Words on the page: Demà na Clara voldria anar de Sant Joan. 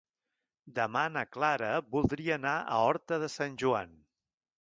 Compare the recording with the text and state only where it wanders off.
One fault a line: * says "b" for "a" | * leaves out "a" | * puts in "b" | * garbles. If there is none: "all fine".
* puts in "a Horta"